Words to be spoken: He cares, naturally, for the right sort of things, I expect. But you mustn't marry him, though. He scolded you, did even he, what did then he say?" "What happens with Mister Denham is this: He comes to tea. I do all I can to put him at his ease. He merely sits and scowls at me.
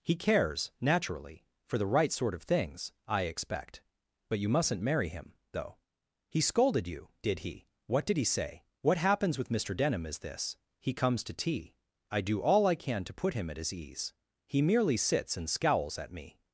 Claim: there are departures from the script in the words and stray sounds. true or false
true